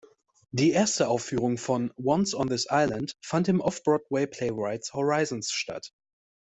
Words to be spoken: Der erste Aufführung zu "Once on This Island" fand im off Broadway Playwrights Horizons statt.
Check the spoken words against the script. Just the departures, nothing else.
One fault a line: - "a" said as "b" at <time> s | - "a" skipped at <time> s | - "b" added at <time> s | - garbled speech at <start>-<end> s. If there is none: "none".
- "Der" said as "Die" at 0.5 s
- "zu" said as "von" at 1.6 s